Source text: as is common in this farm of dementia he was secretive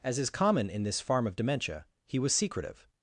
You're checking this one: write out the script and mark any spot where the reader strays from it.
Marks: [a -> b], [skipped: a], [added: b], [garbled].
as is common in this farm of dementia he was secretive